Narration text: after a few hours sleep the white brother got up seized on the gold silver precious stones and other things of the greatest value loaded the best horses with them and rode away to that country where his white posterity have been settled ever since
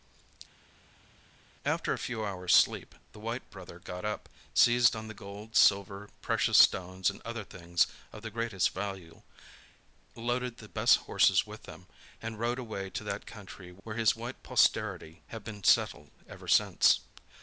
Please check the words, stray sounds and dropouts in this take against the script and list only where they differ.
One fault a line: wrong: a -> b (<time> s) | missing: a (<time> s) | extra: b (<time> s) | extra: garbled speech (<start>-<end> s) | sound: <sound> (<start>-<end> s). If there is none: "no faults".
no faults